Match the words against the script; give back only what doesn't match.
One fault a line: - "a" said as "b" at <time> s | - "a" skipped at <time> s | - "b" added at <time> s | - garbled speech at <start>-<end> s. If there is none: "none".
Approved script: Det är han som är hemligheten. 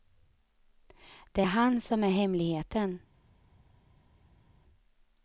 - "är" skipped at 1.4 s